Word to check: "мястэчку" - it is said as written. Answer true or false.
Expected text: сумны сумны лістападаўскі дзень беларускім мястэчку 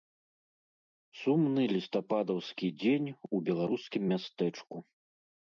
true